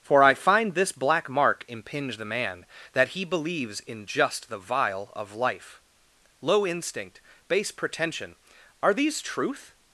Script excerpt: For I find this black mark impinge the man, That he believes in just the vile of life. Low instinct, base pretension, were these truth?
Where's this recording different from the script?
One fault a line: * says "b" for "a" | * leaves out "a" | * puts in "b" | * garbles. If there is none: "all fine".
* says "are" for "were"